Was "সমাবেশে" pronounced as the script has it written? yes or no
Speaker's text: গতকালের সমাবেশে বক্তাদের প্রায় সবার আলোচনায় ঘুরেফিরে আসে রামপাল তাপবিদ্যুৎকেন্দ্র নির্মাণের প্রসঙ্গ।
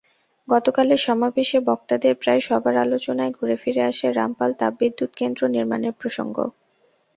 yes